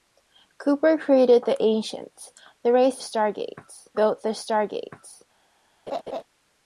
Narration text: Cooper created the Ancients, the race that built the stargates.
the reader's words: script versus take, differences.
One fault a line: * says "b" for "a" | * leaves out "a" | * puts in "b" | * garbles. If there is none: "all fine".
* says "stargates" for "that"